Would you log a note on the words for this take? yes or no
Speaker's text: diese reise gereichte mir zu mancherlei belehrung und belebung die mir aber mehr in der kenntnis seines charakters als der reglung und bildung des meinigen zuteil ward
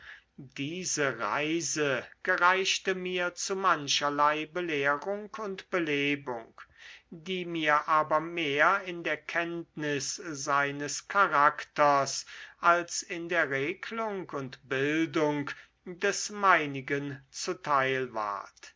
yes